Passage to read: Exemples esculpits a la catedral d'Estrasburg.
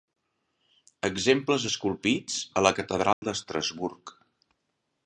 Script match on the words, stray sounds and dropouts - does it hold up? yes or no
no